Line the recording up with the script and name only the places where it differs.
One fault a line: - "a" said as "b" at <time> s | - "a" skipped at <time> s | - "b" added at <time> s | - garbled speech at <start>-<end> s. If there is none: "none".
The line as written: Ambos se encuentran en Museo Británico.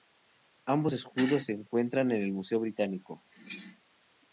- "escudos" added at 0.9 s
- "el" added at 2.2 s